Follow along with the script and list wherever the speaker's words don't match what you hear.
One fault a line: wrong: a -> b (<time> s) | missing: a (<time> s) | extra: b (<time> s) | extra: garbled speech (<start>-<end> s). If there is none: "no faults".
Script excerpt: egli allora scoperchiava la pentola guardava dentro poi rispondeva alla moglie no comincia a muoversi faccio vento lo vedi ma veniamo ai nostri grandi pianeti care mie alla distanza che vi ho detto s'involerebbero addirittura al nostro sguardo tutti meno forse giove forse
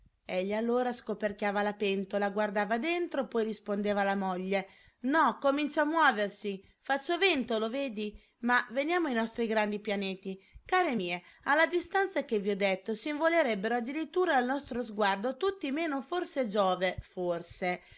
no faults